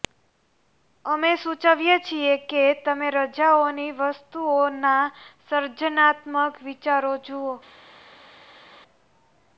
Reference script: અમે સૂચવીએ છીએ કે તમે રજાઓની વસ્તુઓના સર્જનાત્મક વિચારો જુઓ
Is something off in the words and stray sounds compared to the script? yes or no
no